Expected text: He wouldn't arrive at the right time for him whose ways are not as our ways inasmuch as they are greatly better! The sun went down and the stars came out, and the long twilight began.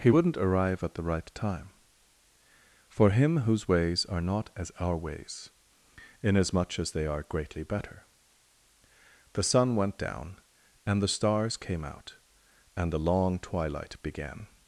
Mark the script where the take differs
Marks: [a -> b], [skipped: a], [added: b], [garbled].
He wouldn't arrive at the right time for him whose ways are not as our ways inasmuch as they are greatly better! The sun went down and the stars came out, and the long twilight began.